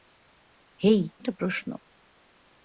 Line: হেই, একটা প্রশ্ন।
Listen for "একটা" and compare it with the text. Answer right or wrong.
right